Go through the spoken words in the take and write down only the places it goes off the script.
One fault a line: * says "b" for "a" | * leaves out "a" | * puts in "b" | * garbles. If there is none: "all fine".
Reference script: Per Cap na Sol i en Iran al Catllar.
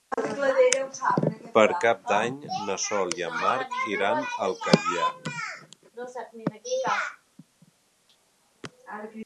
* puts in "d'Any"
* puts in "Marc"